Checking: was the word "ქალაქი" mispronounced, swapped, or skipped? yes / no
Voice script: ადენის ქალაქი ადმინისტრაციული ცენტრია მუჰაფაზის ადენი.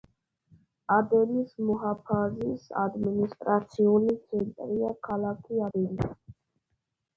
yes